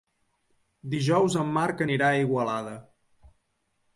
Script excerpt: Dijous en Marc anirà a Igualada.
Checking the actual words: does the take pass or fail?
pass